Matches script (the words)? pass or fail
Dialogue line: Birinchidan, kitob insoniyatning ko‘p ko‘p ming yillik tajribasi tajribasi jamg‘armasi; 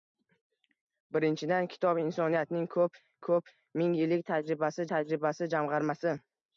pass